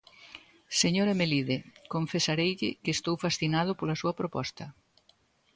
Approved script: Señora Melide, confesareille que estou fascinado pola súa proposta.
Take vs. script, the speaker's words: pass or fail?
pass